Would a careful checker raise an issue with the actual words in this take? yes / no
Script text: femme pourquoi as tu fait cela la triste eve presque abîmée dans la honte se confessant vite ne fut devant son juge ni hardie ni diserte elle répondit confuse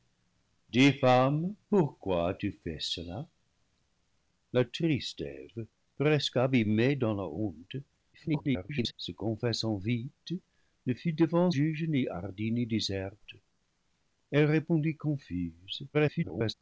yes